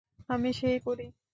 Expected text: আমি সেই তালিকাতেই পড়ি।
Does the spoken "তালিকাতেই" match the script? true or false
false